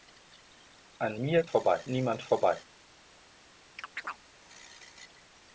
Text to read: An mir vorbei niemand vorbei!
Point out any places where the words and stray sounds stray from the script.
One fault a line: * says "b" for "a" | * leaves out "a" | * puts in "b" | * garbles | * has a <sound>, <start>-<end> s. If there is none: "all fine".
* has a chirp, 3.8-4.2 s